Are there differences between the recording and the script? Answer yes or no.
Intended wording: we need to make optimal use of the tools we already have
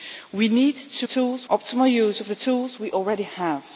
yes